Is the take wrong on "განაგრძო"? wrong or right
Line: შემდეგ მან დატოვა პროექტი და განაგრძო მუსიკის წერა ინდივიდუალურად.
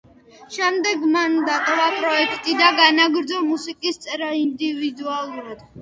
right